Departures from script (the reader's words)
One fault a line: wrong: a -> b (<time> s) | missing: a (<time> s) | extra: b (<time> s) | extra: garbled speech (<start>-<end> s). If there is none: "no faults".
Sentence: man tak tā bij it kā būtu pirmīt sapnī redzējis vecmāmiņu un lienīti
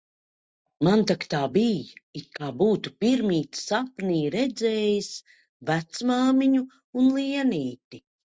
no faults